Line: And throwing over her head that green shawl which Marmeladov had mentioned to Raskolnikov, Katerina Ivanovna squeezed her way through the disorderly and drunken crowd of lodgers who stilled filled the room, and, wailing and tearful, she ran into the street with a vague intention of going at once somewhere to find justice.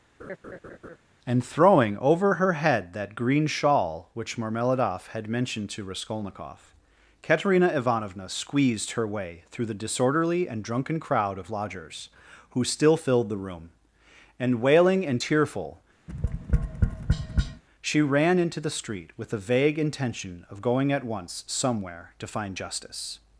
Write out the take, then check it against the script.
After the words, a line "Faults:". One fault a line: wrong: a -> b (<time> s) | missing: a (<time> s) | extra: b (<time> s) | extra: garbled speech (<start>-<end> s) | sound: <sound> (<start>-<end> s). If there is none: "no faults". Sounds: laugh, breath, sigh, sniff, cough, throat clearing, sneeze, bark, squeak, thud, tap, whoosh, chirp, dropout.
And throwing over her head that green shawl which Marmeladov had mentioned to Raskolnikov, Katerina Ivanovna squeezed her way through the disorderly and drunken crowd of lodgers who still filled the room, and, wailing and tearful, she ran into the street with a vague intention of going at once somewhere to find justice.
Faults:
sound: laugh (0.2-1.0 s)
wrong: stilled -> still (12.6 s)
sound: tap (16.1-17.6 s)